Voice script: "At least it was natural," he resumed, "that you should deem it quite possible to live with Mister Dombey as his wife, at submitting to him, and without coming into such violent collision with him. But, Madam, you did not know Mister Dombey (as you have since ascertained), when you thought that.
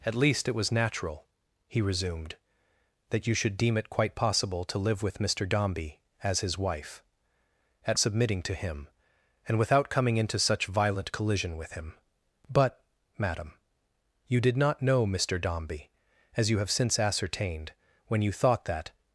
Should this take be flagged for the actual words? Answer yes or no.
no